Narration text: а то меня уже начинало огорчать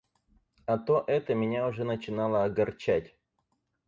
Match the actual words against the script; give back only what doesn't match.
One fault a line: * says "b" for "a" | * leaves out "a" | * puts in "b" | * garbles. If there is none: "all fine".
* puts in "это"